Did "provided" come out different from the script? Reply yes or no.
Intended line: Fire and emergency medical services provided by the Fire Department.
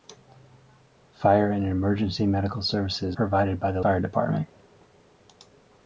no